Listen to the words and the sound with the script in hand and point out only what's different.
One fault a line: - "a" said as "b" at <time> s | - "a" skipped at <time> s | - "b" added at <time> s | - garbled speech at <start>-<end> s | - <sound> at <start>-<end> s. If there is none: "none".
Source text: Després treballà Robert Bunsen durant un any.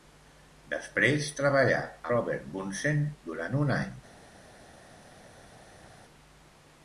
none